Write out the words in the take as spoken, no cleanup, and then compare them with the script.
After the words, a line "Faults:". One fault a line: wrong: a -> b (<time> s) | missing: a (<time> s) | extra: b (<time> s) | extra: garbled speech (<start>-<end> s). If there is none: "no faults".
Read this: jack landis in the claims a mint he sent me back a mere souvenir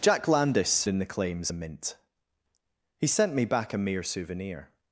jack landis in the claims a mint he sent me back a mere souvenir
Faults:
no faults